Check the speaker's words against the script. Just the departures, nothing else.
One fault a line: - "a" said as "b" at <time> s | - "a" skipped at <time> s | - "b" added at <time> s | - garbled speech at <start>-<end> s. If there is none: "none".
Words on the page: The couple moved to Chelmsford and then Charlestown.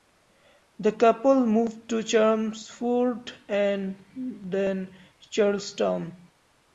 none